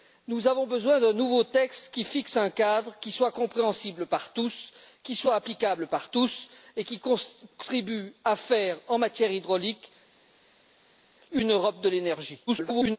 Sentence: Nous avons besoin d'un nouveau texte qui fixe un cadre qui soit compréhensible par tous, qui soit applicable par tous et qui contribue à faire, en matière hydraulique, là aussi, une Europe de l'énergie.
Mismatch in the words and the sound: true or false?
true